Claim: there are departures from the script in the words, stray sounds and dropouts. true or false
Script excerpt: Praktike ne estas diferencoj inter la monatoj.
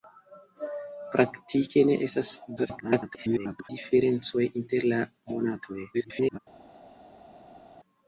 true